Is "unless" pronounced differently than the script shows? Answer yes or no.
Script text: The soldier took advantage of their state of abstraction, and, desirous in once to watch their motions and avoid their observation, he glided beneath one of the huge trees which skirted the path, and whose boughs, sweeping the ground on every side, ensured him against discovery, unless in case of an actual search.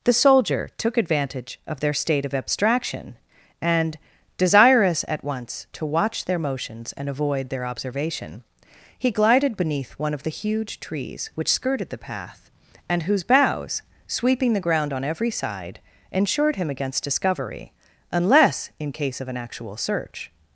no